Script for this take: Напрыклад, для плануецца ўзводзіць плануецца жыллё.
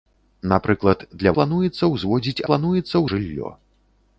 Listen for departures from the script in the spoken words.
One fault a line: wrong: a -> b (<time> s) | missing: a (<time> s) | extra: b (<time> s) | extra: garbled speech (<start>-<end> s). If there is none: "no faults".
no faults